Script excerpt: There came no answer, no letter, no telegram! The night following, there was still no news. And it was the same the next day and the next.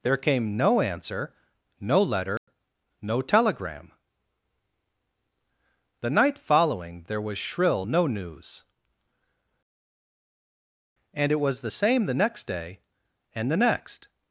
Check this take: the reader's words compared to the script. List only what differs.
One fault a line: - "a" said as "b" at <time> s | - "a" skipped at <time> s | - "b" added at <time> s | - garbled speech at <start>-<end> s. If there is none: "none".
- "still" said as "shrill" at 7.4 s